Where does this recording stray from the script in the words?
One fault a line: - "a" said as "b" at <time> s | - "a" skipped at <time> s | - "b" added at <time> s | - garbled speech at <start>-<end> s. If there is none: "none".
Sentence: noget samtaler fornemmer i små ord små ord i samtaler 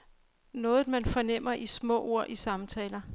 - "samtaler" said as "man" at 0.9 s
- "små ord" skipped at 2.3 s